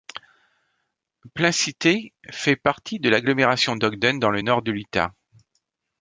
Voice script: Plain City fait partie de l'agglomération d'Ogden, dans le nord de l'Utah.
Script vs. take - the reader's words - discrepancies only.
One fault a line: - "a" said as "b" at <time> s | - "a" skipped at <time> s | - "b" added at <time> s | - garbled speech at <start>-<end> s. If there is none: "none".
none